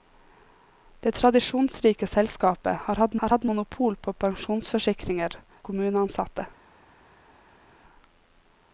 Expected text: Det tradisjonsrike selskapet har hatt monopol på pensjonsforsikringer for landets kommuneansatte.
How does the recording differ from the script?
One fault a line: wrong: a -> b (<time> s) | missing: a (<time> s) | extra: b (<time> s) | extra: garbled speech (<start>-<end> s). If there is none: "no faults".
extra: har hatt (3.2 s)
missing: for landets (5.4 s)